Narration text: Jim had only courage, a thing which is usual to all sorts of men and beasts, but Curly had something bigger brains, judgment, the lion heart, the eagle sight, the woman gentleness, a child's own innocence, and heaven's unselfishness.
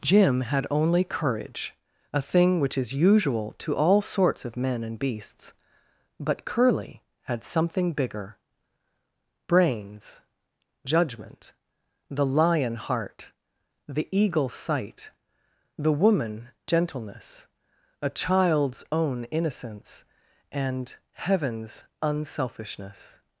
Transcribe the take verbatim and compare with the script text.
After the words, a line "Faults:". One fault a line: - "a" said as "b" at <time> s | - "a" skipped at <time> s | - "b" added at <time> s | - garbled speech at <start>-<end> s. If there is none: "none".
Jim had only courage, a thing which is usual to all sorts of men and beasts, but Curly had something bigger brains, judgment, the lion heart, the eagle sight, the woman gentleness, a child's own innocence, and heaven's unselfishness.
Faults:
none